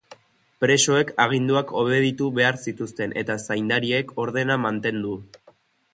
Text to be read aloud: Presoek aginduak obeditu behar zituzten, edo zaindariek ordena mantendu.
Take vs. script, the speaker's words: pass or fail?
fail